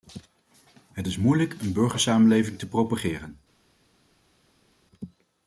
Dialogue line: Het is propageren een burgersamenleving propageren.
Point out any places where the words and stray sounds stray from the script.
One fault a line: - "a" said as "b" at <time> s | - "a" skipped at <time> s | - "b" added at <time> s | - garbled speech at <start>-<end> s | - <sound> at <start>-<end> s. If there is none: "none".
- "propageren" said as "moeilijk" at 1.2 s
- "te" added at 2.6 s